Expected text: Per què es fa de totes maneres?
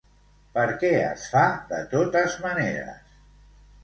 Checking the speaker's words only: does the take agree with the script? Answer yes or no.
yes